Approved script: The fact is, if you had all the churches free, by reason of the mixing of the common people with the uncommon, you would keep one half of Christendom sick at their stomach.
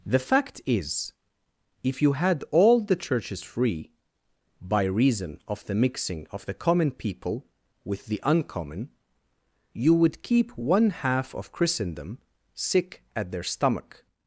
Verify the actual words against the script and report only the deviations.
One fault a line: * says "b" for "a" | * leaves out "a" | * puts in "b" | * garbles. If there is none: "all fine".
all fine